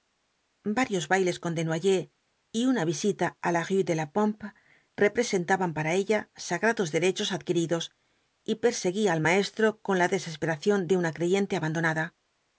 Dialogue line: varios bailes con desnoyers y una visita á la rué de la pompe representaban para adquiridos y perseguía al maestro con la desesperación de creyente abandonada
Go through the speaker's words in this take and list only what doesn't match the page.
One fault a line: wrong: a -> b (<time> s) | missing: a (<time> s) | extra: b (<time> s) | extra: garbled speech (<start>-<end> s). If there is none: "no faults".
extra: ella sagrados derechos (6.0 s)
extra: una (11.0 s)